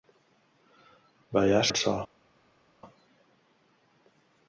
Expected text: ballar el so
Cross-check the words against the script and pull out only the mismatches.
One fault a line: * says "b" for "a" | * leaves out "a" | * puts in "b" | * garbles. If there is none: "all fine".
all fine